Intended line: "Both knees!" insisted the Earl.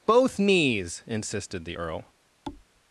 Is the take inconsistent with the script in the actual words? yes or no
no